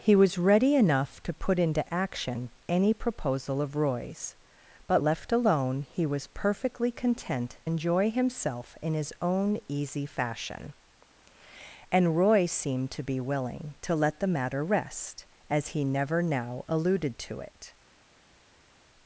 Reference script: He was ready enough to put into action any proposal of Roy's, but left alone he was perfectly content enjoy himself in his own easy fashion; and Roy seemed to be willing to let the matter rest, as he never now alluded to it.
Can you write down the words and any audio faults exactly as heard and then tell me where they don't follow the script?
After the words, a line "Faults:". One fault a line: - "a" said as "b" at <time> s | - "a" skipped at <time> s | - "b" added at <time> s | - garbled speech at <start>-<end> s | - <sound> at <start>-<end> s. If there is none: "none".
He was ready enough to put into action any proposal of Roy's, but left alone he was perfectly content enjoy himself in his own easy fashion; and Roy seemed to be willing to let the matter rest, as he never now alluded to it.
Faults:
none